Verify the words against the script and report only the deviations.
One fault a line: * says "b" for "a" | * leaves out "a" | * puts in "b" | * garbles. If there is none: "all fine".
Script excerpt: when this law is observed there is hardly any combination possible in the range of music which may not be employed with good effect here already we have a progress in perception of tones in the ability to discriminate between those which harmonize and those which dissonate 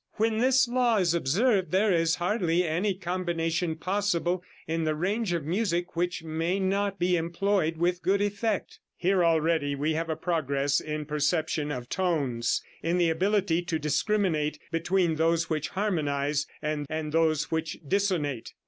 * puts in "and"